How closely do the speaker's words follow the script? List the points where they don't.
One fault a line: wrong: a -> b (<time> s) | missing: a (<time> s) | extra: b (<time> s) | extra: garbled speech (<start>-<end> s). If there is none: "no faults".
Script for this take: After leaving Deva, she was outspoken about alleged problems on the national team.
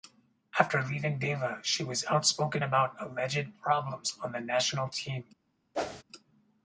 no faults